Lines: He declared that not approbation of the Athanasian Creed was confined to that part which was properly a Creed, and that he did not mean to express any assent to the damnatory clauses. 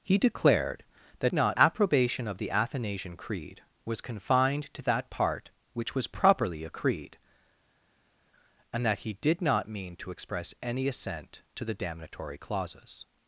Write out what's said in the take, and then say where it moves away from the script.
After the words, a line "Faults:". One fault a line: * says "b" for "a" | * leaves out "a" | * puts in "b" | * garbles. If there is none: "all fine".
He declared that not approbation of the Athanasian Creed was confined to that part which was properly a Creed, and that he did not mean to express any assent to the damnatory clauses.
Faults:
all fine